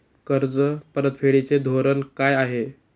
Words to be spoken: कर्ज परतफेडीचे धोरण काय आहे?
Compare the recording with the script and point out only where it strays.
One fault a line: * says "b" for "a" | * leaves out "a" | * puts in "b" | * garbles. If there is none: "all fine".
all fine